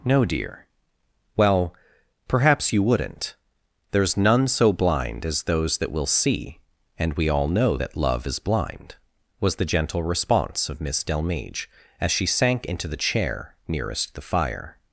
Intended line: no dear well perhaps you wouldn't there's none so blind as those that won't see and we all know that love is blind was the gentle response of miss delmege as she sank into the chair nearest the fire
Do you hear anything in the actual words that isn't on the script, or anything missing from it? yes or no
yes